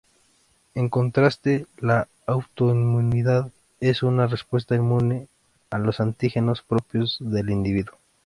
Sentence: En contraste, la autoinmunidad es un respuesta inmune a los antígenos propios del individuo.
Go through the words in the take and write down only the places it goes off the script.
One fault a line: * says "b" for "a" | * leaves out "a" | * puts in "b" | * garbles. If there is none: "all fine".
* says "una" for "un"